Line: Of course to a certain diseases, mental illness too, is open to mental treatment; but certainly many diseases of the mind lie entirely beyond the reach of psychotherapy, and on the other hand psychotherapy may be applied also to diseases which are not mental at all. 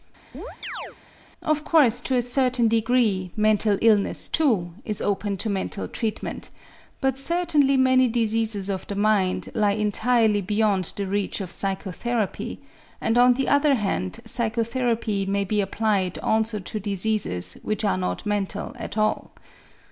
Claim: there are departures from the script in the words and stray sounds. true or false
true